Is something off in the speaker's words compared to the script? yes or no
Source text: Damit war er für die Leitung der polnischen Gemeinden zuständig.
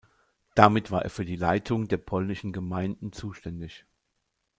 no